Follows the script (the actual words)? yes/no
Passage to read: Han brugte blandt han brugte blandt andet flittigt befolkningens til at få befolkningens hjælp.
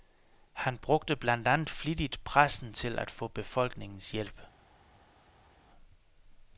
no